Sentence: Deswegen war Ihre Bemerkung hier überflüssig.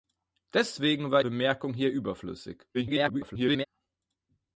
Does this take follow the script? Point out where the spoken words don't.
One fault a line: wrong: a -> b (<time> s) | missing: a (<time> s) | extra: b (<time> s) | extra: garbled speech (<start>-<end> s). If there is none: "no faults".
missing: Ihre (1.2 s)
extra: garbled speech (2.7-3.6 s)